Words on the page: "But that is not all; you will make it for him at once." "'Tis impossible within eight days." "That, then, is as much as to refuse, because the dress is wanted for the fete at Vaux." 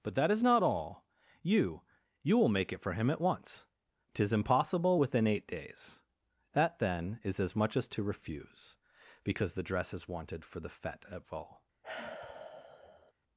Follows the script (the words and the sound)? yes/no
no